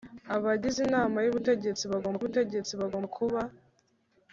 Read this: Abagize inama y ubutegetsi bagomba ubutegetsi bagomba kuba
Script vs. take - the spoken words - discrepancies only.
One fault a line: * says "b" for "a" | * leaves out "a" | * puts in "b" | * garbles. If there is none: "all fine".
all fine